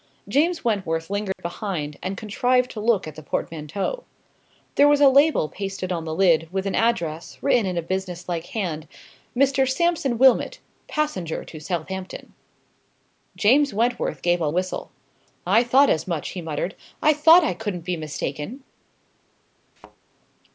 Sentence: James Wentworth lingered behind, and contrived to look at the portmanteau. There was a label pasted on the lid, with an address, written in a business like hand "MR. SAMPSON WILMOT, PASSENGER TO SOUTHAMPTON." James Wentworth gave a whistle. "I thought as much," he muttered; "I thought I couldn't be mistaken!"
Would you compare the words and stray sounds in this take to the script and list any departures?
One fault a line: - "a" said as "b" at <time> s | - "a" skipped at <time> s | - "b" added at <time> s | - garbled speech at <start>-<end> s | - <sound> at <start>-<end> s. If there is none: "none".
- dropout at 1.3-1.4 s
- thud at 19.8-20.0 s